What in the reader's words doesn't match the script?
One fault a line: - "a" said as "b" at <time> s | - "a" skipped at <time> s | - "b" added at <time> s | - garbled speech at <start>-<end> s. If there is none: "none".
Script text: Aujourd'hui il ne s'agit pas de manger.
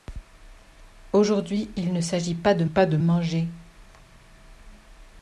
- "pas de" added at 2.6 s